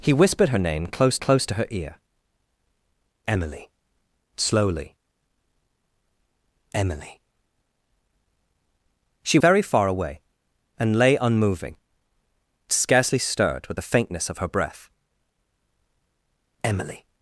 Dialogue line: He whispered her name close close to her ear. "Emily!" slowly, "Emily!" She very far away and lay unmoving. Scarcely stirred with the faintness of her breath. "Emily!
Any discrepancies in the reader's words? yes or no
no